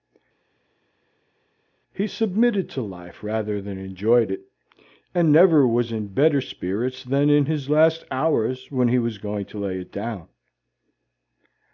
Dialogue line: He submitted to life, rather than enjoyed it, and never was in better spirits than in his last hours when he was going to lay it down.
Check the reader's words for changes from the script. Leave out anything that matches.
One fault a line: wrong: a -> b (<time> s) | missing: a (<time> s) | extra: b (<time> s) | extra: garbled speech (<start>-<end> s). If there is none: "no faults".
no faults